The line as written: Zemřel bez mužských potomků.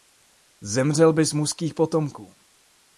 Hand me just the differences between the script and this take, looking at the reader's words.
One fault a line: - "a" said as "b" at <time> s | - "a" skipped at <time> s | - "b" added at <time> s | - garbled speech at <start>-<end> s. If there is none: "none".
none